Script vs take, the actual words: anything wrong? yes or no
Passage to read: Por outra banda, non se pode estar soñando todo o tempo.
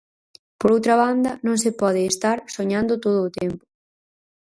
no